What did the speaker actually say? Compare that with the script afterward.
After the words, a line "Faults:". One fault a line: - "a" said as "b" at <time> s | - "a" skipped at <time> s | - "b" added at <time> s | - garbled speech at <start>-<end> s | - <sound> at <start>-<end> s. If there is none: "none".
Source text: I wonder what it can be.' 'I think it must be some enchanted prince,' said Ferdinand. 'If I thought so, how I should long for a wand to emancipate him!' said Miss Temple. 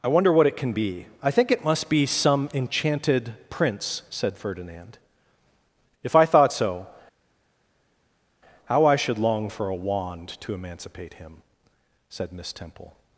I wonder what it can be.' 'I think it must be some enchanted prince,' said Ferdinand. 'If I thought so, how I should long for a wand to emancipate him!' said Miss Temple.
Faults:
none